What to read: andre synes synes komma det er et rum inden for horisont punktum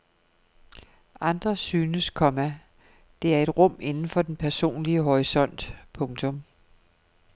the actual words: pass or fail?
fail